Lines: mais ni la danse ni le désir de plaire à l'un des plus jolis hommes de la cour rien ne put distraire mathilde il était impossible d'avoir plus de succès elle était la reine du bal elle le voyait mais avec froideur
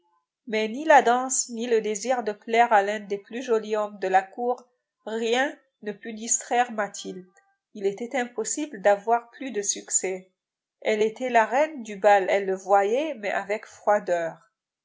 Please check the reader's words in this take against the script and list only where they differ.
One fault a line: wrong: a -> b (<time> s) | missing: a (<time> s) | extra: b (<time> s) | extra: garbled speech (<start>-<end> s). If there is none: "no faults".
no faults